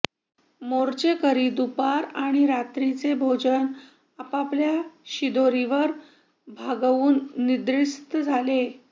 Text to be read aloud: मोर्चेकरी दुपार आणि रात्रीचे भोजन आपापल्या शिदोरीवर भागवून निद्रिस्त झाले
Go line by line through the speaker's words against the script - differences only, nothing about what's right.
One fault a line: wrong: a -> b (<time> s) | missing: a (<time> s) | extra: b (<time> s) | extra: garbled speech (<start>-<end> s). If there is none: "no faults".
no faults